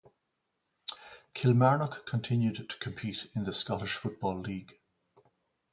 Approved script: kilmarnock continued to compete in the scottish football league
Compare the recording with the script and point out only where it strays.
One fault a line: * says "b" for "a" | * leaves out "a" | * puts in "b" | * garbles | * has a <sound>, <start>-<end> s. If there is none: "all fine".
all fine